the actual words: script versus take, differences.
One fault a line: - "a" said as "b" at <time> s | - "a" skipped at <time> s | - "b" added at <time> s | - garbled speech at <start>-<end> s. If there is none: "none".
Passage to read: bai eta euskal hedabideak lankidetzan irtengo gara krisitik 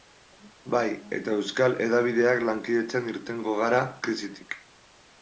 none